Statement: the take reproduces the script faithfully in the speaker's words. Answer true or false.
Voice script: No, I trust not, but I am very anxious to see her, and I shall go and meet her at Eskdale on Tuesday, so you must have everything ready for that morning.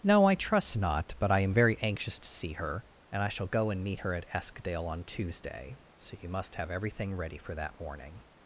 true